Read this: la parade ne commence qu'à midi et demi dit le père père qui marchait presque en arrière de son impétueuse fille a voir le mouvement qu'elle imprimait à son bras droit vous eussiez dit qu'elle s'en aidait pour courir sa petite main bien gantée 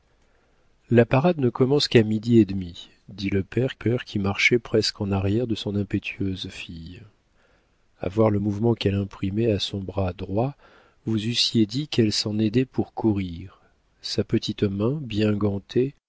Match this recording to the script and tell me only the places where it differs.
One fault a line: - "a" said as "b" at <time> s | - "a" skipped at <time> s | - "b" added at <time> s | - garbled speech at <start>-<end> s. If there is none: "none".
none